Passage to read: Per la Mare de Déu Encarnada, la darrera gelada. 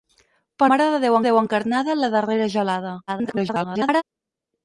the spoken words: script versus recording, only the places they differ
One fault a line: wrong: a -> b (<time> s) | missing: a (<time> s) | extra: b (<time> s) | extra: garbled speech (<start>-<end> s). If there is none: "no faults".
missing: la (0.7 s)
extra: Déu (1.3 s)
extra: garbled speech (3.1-4.0 s)